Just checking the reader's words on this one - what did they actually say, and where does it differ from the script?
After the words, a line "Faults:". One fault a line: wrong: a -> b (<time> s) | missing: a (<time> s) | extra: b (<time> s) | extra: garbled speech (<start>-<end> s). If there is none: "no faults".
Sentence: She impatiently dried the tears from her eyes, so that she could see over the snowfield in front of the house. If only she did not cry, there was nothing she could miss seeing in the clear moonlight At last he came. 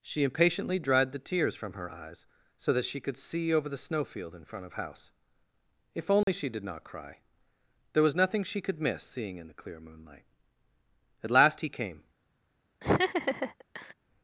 She impatiently dried the tears from her eyes, so that she could see over the snowfield in front of house. If only she did not cry, there was nothing she could miss seeing in the clear moonlight At last he came.
Faults:
missing: the (4.7 s)